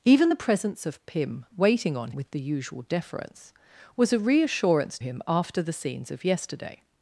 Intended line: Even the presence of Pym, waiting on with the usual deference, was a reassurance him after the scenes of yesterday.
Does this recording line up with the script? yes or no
yes